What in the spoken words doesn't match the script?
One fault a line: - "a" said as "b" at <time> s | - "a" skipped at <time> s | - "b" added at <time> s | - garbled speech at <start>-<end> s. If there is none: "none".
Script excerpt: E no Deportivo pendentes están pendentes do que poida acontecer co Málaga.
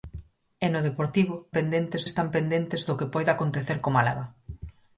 none